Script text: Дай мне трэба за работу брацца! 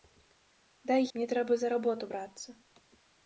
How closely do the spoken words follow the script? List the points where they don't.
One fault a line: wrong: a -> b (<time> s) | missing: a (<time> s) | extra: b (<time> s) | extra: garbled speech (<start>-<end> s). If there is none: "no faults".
no faults